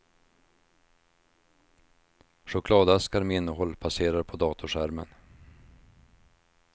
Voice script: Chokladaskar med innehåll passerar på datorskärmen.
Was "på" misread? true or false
false